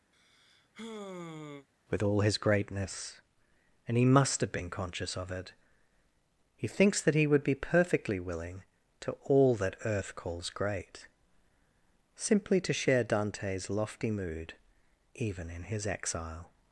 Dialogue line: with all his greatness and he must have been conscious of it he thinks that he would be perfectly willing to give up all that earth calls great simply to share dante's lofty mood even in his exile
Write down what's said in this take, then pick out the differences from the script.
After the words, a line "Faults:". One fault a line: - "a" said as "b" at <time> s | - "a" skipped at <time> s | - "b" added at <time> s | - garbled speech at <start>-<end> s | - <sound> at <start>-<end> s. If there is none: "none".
with all his greatness and he must have been conscious of it he thinks that he would be perfectly willing to all that earth calls great simply to share dante's lofty mood even in his exile
Faults:
- sigh at 0.1-1.7 s
- "give up" skipped at 9.2 s